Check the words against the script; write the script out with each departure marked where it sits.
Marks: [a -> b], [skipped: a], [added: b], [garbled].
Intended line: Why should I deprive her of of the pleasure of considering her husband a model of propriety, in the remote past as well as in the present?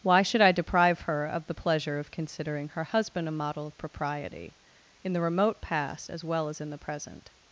Why should I deprive her of [skipped: of] the pleasure of considering her husband a model of propriety, in the remote past as well as in the present?